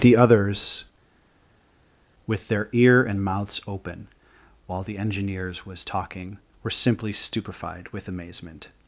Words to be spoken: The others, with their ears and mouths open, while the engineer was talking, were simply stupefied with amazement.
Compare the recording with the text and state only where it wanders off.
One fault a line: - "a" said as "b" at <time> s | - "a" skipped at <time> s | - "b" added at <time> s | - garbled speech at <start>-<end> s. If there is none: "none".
- "ears" said as "ear" at 2.7 s
- "engineer" said as "engineers" at 5.0 s